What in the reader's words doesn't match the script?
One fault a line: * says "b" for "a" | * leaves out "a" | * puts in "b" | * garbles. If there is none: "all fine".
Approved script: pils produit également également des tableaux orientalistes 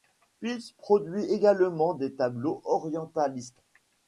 * leaves out "également"